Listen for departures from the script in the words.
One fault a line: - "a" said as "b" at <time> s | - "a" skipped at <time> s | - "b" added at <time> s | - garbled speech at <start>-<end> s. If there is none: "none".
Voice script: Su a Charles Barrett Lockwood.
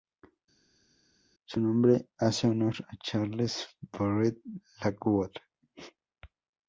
- "nombre hace honor" added at 1.6 s